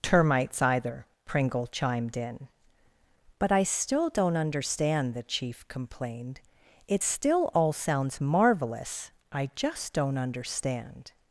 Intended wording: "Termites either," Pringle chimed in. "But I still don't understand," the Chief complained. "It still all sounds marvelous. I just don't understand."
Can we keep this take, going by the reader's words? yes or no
yes